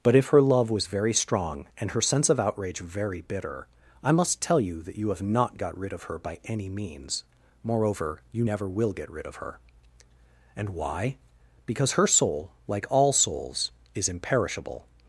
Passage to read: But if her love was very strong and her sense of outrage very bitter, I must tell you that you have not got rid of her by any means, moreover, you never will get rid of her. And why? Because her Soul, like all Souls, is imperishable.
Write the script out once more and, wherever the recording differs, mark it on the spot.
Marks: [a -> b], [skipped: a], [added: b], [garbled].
But if her love was very strong and her sense of outrage very bitter, I must tell you that you have not got rid of her by any means, moreover, you never will get rid of her. And why? Because her Soul, like all Souls, is imperishable.